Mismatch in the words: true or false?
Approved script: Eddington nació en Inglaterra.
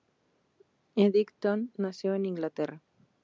false